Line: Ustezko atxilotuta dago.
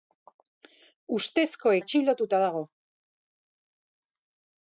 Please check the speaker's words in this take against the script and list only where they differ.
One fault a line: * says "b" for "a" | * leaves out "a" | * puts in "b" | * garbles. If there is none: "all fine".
all fine